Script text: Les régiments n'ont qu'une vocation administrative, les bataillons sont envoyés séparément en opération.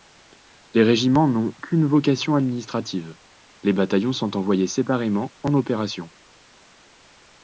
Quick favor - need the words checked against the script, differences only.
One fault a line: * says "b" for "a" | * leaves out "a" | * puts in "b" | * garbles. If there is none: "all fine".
all fine